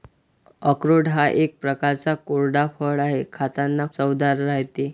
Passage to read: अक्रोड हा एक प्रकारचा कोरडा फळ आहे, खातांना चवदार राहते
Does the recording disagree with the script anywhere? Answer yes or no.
no